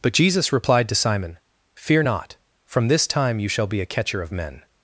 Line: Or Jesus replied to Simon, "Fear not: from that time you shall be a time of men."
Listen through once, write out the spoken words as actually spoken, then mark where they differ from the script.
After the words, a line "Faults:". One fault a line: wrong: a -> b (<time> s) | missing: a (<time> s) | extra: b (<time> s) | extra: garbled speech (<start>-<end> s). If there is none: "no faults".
But Jesus replied to Simon, "Fear not: from this time you shall be a catcher of men."
Faults:
wrong: Or -> But (0.0 s)
wrong: that -> this (2.9 s)
wrong: time -> catcher (3.9 s)